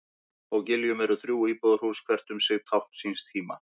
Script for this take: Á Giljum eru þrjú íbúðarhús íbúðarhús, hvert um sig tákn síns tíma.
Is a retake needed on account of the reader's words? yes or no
yes